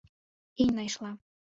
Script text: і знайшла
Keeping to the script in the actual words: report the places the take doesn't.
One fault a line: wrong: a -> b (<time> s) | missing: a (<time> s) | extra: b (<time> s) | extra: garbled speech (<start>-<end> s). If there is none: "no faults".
no faults